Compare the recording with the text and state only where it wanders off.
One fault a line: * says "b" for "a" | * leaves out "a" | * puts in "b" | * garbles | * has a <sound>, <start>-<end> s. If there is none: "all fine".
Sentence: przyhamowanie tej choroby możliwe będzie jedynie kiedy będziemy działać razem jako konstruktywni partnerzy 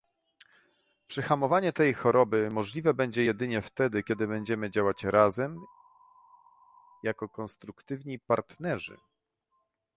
* puts in "wtedy"